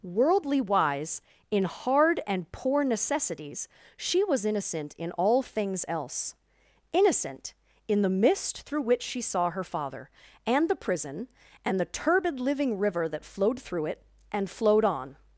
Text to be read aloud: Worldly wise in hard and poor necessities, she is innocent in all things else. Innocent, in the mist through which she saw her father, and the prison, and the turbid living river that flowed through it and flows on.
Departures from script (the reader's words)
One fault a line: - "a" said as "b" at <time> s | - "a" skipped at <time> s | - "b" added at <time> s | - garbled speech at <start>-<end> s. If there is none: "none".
- "is" said as "was" at 4.2 s
- "flows" said as "flowed" at 14.5 s